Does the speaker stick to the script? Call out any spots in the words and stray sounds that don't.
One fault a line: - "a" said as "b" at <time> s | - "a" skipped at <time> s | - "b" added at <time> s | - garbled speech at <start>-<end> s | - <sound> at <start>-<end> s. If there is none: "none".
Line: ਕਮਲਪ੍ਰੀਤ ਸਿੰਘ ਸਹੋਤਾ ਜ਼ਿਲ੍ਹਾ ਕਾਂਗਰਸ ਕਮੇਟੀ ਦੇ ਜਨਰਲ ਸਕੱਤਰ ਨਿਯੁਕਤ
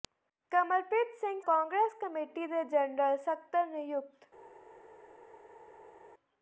- "ਸਹੋਤਾ ਜ਼ਿਲ੍ਹਾ" skipped at 1.4 s